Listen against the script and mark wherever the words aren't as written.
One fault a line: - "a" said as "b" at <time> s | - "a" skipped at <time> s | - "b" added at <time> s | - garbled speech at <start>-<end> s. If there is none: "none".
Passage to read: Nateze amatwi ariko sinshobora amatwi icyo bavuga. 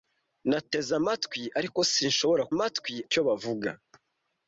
none